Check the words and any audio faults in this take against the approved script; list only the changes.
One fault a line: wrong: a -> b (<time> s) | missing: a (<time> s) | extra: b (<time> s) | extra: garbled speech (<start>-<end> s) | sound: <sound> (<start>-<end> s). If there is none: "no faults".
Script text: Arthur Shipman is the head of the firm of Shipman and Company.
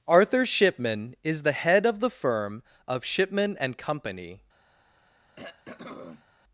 sound: throat clearing (5.4-6.2 s)